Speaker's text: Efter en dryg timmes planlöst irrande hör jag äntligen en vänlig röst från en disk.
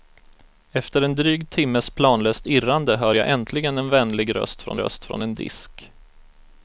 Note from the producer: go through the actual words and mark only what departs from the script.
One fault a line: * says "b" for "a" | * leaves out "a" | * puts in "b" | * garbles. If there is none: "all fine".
* puts in "röst från"